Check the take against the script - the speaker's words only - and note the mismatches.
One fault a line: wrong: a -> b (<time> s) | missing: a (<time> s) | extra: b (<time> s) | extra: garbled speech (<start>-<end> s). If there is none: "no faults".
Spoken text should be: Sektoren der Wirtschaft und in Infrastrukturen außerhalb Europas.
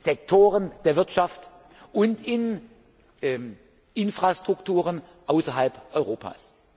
no faults